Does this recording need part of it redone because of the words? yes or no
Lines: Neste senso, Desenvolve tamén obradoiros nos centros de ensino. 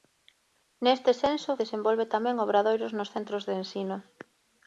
no